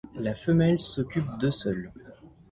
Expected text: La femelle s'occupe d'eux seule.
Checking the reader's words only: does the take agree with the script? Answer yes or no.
yes